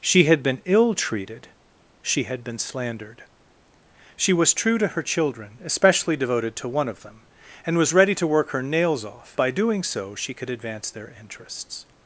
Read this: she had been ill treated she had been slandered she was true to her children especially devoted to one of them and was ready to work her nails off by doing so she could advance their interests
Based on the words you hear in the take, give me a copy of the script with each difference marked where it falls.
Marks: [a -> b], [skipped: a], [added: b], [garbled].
she had been ill treated she had been slandered she was true to her children especially devoted to one of them and was ready to work her nails off by doing so she could advance their interests